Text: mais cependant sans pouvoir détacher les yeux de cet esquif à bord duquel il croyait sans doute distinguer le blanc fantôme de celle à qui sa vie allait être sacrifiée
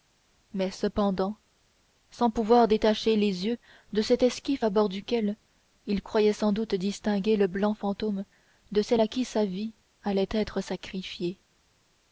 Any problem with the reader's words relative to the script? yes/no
no